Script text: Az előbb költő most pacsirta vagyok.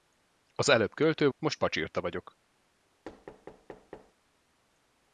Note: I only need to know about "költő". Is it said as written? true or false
true